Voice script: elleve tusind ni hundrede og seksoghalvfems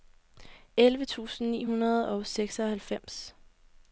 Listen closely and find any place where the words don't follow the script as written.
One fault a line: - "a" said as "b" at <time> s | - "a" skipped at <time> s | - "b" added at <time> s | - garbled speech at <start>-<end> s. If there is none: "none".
none